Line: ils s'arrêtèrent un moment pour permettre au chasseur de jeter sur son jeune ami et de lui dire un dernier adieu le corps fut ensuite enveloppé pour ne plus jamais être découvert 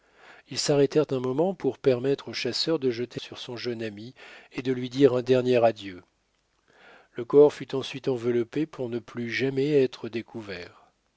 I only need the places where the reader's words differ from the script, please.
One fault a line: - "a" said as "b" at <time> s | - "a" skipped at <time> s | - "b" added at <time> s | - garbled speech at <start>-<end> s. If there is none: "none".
none